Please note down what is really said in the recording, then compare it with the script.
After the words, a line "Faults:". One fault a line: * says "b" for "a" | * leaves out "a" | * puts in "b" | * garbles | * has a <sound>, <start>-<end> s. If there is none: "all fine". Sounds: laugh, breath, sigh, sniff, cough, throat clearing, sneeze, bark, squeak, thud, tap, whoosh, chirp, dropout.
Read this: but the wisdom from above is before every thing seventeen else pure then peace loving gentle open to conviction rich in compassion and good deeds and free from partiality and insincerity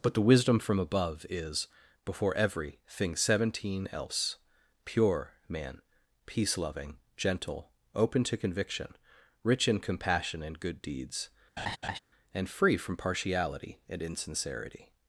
but the wisdom from above is before every thing seventeen else pure man peace loving gentle open to conviction rich in compassion and good deeds and free from partiality and insincerity
Faults:
* says "man" for "then"
* has a laugh, 11.6-12.0 s